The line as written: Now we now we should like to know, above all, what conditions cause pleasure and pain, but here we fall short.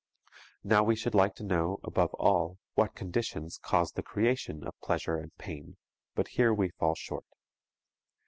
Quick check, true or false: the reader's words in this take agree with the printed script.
false